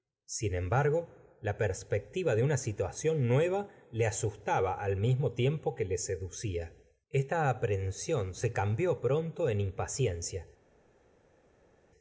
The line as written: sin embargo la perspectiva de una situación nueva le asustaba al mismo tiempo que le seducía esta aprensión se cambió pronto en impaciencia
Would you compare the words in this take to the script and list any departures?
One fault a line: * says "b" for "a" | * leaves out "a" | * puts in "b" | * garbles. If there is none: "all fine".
all fine